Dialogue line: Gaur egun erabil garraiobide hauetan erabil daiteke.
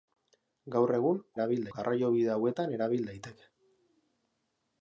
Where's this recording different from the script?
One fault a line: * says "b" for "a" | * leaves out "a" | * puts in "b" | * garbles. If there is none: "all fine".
all fine